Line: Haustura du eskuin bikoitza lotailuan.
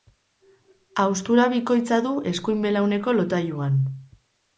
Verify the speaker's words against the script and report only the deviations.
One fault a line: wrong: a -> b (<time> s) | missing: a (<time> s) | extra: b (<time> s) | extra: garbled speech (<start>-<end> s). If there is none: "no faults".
extra: bikoitza (1.5 s)
wrong: bikoitza -> belauneko (2.7 s)